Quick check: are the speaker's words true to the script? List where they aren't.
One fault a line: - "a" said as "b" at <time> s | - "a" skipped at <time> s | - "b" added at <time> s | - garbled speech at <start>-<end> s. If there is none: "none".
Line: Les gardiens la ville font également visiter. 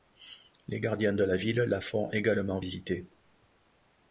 - "de" added at 1.1 s
- "la" added at 1.6 s